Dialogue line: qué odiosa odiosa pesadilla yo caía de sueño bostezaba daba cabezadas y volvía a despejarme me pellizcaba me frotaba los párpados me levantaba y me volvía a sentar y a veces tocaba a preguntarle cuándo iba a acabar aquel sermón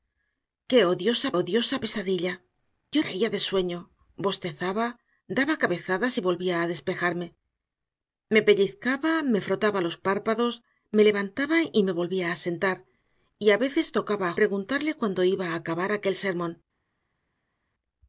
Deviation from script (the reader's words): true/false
false